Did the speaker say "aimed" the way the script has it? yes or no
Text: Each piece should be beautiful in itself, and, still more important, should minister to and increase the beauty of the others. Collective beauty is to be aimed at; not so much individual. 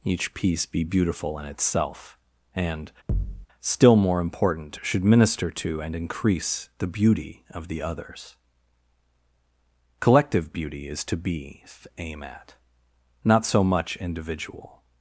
no